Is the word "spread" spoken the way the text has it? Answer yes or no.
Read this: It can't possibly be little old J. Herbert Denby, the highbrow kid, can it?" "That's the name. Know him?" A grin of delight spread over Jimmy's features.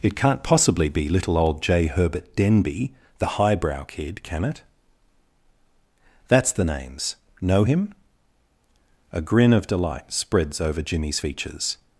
no